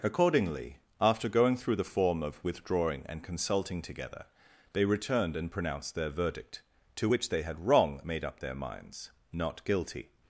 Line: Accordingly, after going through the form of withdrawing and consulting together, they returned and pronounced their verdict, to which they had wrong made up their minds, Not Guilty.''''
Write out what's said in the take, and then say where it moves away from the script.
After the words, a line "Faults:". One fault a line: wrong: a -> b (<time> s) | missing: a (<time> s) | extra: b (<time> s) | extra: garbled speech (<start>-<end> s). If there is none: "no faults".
Accordingly, after going through the form of withdrawing and consulting together, they returned and pronounced their verdict, to which they had wrong made up their minds, Not Guilty.''''
Faults:
no faults